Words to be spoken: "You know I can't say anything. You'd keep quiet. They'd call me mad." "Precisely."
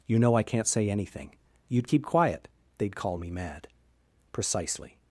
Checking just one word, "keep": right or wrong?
right